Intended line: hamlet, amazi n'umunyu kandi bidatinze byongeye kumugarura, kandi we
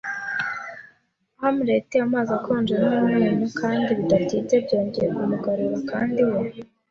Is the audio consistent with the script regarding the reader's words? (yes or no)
no